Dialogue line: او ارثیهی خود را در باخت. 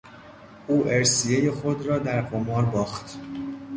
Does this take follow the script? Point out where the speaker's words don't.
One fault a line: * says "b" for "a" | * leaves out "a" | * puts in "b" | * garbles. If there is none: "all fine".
* puts in "قمار"